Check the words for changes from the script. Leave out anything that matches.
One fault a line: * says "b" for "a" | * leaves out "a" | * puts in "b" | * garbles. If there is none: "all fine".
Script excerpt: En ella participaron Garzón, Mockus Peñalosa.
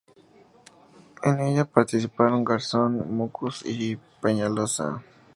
* puts in "y"